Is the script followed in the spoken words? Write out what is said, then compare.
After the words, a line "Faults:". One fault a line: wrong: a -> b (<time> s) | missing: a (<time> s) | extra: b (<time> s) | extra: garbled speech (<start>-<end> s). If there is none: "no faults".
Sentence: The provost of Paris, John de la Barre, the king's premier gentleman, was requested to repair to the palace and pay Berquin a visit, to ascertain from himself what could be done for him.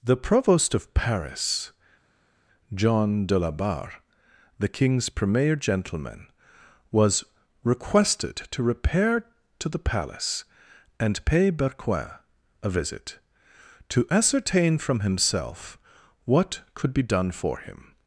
The provost of Paris, John de la Barre, the king's premier gentleman, was requested to repair to the palace and pay Berquin a visit, to ascertain from himself what could be done for him.
Faults:
no faults